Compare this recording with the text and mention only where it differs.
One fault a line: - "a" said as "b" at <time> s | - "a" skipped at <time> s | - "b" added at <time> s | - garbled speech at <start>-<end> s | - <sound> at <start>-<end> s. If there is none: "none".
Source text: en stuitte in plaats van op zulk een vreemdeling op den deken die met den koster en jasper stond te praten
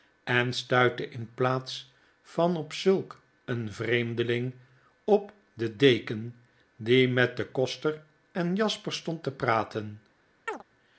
- chirp at 10.5-10.6 s